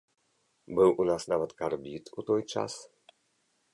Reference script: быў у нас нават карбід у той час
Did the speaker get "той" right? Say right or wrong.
right